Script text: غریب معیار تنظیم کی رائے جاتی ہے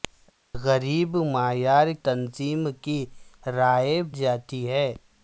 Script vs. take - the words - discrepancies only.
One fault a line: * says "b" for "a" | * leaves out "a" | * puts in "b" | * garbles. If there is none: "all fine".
all fine